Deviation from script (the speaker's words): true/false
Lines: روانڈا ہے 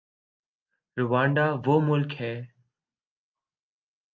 true